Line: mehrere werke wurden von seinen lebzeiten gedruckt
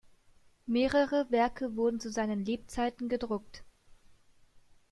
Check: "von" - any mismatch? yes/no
yes